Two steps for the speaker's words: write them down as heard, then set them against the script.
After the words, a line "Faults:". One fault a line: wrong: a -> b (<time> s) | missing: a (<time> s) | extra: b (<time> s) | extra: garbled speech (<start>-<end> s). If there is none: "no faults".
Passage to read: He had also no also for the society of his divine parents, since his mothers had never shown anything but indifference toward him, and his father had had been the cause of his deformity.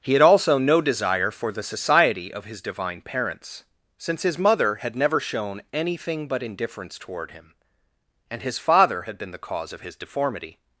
He had also no desire for the society of his divine parents, since his mother had never shown anything but indifference toward him, and his father had been the cause of his deformity.
Faults:
wrong: also -> desire (0.8 s)
wrong: mothers -> mother (4.4 s)
missing: had (9.2 s)